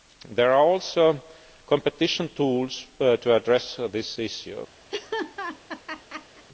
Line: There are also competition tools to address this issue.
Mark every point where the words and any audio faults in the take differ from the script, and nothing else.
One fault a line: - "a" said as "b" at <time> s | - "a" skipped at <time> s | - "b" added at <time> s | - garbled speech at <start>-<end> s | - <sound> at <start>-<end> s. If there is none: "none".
- laugh at 4.9-6.4 s